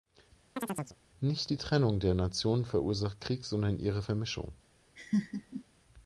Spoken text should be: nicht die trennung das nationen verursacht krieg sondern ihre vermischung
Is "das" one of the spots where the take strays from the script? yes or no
yes